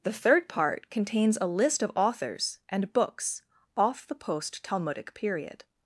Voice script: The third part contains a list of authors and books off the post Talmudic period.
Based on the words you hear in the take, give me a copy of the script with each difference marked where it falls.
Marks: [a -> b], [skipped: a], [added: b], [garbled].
The third part contains a list of authors and books off the post Talmudic period.